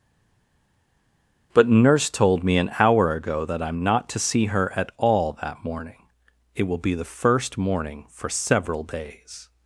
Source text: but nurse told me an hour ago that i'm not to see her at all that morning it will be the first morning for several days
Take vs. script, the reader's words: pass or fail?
pass